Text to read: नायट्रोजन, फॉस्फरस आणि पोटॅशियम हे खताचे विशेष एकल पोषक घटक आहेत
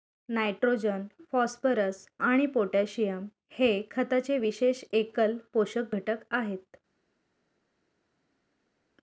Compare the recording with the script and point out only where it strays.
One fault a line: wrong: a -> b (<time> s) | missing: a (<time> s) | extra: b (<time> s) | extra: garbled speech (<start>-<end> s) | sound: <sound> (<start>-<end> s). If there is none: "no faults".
no faults